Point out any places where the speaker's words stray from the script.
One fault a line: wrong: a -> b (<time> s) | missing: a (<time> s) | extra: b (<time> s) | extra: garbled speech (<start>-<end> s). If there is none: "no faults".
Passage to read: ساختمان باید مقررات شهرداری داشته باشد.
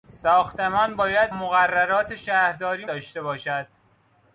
no faults